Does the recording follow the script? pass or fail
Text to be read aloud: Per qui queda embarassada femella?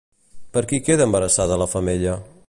fail